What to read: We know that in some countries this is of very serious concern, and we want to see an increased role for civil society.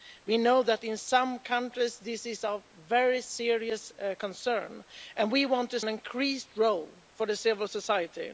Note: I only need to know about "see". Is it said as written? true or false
false